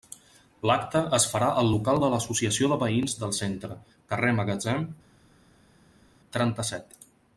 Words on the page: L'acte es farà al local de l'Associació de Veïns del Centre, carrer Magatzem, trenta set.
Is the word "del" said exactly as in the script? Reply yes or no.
yes